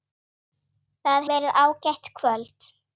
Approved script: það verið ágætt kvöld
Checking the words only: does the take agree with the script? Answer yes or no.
yes